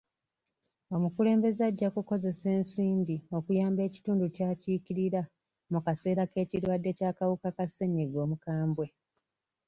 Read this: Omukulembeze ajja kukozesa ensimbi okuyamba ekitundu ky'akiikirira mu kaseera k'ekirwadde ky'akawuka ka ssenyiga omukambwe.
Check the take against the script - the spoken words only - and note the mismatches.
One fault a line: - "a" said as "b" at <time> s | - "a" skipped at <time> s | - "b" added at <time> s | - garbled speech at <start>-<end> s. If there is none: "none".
none